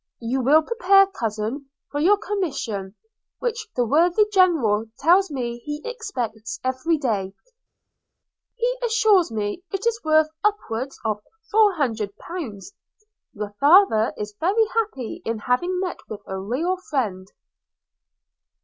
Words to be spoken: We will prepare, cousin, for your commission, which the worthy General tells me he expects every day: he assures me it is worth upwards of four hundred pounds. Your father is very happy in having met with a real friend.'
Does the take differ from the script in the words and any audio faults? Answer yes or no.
yes